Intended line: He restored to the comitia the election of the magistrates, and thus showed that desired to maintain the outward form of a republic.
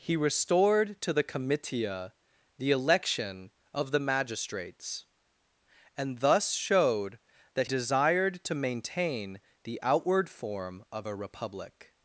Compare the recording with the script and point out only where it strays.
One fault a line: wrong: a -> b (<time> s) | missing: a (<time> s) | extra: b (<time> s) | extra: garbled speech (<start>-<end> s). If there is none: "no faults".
no faults